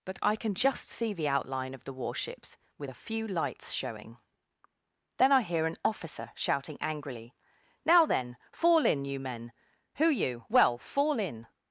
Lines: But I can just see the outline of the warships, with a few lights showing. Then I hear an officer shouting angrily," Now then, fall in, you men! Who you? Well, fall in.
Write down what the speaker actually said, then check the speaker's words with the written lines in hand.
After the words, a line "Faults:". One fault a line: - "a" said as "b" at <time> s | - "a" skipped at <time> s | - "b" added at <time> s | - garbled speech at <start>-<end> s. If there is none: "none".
But I can just see the outline of the warships, with a few lights showing. Then I hear an officer shouting angrily," Now then, fall in, you men! Who you? Well, fall in.
Faults:
none